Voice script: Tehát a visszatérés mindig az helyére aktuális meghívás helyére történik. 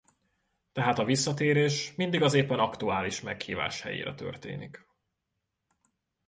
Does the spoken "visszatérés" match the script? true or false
true